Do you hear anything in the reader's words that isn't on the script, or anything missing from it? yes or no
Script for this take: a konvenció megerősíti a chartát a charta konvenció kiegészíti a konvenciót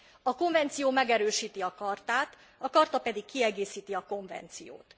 yes